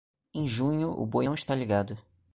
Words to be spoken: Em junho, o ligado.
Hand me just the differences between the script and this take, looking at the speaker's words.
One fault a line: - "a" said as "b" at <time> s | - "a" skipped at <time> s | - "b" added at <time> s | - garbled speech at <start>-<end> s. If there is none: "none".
- "boi não está" added at 1.1 s